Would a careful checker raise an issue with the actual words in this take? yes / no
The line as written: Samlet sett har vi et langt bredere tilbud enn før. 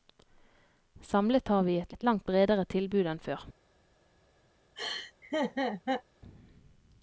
yes